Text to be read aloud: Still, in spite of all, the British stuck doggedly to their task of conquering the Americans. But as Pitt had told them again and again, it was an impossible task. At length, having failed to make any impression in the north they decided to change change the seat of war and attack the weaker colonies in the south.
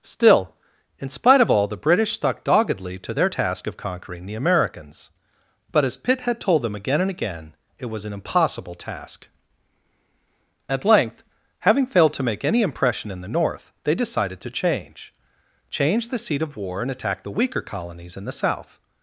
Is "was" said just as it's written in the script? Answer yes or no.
yes